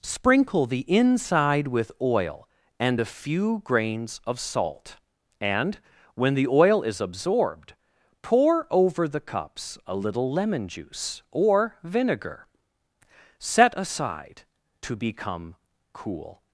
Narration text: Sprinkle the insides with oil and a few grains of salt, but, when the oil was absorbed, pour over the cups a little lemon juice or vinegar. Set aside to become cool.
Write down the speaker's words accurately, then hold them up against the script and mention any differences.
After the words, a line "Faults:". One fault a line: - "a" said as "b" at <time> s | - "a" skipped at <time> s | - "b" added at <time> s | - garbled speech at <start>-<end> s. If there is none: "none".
Sprinkle the inside with oil and a few grains of salt, and, when the oil is absorbed, pour over the cups a little lemon juice or vinegar. Set aside to become cool.
Faults:
- "insides" said as "inside" at 0.9 s
- "but" said as "and" at 5.4 s
- "was" said as "is" at 6.8 s